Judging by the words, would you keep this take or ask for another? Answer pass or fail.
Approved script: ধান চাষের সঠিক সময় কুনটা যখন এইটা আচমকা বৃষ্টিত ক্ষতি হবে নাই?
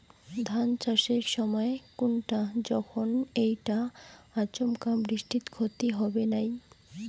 fail